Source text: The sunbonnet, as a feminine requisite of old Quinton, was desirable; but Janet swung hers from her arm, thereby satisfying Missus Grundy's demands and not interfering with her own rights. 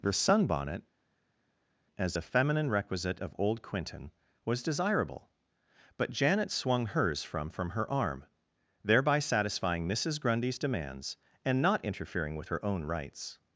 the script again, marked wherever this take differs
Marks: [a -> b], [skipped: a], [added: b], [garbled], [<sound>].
The sunbonnet, as a feminine requisite of old Quinton, was desirable; but Janet swung hers from [added: from] her arm, thereby satisfying Missus Grundy's demands and not interfering with her own rights.